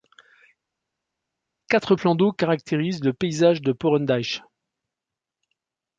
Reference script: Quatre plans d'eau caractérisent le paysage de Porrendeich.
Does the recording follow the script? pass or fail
pass